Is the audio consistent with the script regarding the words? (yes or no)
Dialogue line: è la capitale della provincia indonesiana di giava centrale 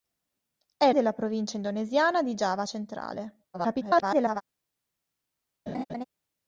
no